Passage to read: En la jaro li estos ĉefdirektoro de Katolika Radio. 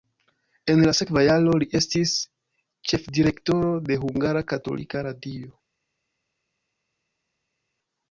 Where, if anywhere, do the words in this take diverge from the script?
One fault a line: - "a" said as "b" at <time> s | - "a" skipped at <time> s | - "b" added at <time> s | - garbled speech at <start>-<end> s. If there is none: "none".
- "sekva" added at 1.0 s
- "estos" said as "estis" at 1.8 s
- "Hungara" added at 4.0 s